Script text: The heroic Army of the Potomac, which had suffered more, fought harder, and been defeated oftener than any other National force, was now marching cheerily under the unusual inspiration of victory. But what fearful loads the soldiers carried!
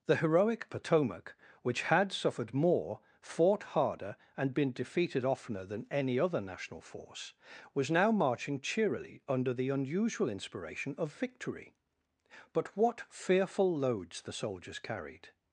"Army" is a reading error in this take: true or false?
true